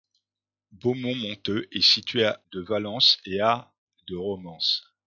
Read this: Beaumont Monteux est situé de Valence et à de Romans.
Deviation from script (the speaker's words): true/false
false